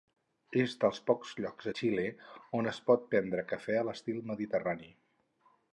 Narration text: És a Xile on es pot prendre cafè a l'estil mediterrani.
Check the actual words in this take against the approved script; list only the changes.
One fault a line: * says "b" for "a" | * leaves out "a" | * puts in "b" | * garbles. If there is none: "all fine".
* puts in "dels pocs llocs"